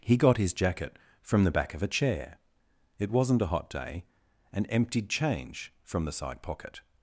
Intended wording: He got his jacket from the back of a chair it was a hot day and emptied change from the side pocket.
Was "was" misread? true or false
true